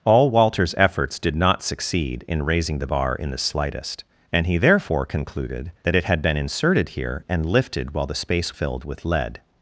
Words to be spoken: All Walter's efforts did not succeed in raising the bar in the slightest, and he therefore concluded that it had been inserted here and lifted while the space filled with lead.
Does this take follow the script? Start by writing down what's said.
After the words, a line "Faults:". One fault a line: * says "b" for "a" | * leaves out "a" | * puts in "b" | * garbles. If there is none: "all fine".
All Walter's efforts did not succeed in raising the bar in the slightest, and he therefore concluded that it had been inserted here and lifted while the space filled with lead.
Faults:
all fine